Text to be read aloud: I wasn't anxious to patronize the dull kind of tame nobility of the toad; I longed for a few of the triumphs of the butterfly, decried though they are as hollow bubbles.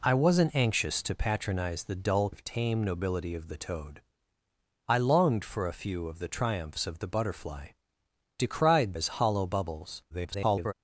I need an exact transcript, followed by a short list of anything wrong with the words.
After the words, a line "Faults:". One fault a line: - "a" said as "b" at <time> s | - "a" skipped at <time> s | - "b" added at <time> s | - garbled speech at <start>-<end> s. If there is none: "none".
I wasn't anxious to patronize the dull of tame nobility of the toad; I longed for a few of the triumphs of the butterfly, decried as hollow bubbles. [garbled]
Faults:
- "kind" skipped at 2.3 s
- "though they are" skipped at 8.9 s
- garbled speech at 10.1-10.7 s